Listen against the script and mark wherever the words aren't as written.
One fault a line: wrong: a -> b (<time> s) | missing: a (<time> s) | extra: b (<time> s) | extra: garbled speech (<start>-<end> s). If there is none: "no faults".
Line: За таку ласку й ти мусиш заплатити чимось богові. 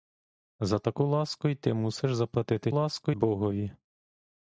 wrong: чимось -> ласку (2.7 s)